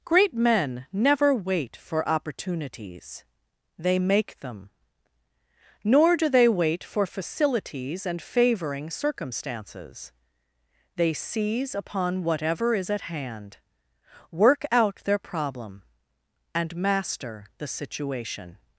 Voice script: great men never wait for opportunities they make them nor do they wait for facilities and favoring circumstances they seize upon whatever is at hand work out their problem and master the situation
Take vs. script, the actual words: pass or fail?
pass